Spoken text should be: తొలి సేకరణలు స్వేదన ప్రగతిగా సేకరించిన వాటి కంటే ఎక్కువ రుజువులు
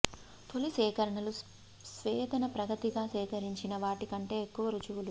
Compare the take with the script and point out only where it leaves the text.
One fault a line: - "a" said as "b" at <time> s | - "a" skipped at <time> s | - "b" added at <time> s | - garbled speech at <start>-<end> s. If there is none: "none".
none